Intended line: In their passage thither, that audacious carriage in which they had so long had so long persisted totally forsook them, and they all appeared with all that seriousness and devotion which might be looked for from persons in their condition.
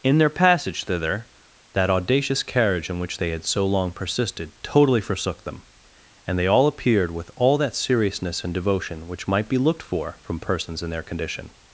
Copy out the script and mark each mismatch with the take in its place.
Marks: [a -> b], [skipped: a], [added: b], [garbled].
In their passage thither, that audacious carriage in which they had so long [skipped: had so long] persisted totally forsook them, and they all appeared with all that seriousness and devotion which might be looked for from persons in their condition.